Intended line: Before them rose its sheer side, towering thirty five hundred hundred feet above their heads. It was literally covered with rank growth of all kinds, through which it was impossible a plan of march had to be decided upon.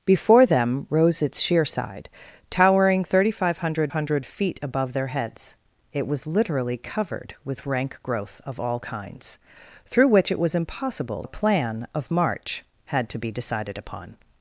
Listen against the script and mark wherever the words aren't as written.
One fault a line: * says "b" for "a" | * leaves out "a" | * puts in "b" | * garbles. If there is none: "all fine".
all fine